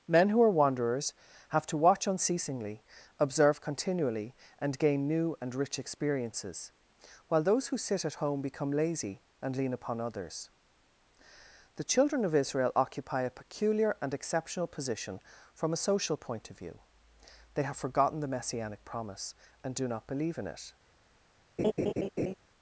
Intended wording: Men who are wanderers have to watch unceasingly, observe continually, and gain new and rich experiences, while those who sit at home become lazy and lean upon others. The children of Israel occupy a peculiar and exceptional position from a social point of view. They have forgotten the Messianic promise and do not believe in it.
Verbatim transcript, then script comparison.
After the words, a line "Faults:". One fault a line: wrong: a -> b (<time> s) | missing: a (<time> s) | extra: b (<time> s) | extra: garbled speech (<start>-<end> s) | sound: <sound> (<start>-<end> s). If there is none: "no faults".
Men who are wanderers have to watch unceasingly, observe continually, and gain new and rich experiences, while those who sit at home become lazy and lean upon others. The children of Israel occupy a peculiar and exceptional position from a social point of view. They have forgotten the Messianic promise and do not believe in it.
Faults:
sound: laugh (21.6-22.3 s)